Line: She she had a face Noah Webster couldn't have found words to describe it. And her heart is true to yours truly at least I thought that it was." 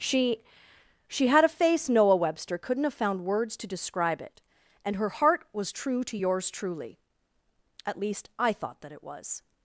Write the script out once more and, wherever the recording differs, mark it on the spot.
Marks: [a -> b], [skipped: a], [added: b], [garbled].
She she had a face Noah Webster couldn't have found words to describe it. And her heart [is -> was] true to yours truly at least I thought that it was."